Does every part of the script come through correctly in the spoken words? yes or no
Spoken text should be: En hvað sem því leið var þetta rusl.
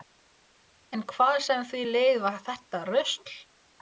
yes